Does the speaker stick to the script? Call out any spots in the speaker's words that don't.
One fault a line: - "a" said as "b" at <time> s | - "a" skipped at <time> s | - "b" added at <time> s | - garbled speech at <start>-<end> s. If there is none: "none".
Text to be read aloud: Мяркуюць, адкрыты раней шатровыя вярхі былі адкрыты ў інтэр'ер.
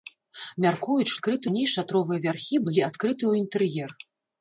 none